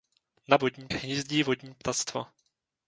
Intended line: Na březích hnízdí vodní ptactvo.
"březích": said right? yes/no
no